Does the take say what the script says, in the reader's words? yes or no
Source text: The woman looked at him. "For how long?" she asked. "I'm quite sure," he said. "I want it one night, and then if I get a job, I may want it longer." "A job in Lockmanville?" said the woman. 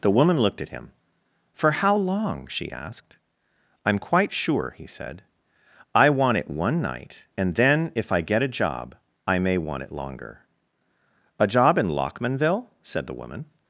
yes